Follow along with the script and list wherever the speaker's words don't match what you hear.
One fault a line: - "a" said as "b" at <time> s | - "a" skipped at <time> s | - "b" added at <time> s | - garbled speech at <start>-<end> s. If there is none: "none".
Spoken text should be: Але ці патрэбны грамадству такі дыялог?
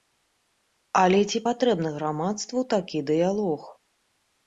none